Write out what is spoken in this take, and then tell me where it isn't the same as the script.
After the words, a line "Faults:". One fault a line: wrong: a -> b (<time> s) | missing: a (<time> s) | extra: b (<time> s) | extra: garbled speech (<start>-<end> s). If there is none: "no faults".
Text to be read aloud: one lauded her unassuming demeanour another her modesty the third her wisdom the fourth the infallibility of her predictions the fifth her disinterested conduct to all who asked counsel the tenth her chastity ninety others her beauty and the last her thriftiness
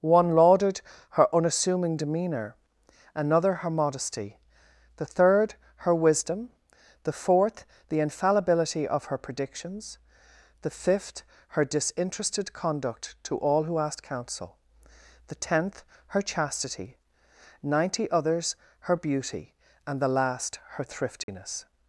one lauded her unassuming demeanour another her modesty the third her wisdom the fourth the infallibility of her predictions the fifth her disinterested conduct to all who asked counsel the tenth her chastity ninety others her beauty and the last her thriftiness
Faults:
no faults